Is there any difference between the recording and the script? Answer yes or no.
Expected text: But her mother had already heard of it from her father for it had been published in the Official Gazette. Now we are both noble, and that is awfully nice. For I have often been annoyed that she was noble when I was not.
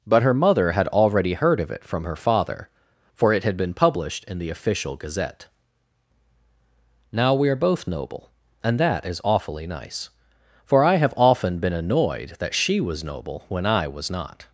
no